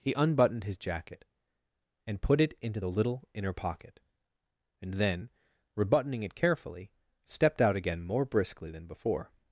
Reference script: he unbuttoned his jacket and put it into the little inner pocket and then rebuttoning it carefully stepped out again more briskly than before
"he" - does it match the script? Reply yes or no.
yes